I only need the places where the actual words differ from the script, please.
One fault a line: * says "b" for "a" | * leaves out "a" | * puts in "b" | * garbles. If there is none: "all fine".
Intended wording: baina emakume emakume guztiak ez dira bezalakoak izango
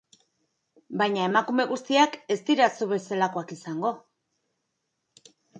* leaves out "emakume"
* puts in "zu"